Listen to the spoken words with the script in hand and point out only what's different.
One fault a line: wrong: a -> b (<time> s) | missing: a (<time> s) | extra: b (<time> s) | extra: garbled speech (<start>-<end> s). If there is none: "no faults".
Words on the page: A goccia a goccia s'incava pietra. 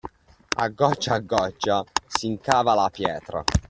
extra: la (2.7 s)